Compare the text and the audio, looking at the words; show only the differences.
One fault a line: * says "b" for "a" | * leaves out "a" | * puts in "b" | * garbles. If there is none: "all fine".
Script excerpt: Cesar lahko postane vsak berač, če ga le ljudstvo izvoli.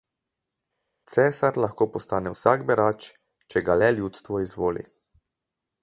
all fine